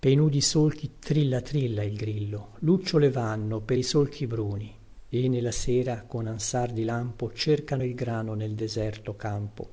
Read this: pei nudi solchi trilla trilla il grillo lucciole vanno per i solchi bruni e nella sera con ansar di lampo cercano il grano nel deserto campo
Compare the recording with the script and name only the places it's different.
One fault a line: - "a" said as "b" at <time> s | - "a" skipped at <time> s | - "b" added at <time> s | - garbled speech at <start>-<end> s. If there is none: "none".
none